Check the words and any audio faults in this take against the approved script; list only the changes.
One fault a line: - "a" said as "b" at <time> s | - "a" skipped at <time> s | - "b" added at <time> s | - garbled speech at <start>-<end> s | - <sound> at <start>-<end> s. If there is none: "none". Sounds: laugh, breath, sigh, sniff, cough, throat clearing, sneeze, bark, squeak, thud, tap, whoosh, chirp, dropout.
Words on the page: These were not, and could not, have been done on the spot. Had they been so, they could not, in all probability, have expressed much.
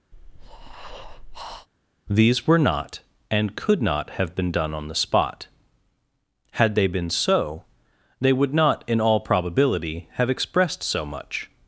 - breath at 0.1-1.7 s
- "could" said as "would" at 8.3 s
- "so" added at 10.8 s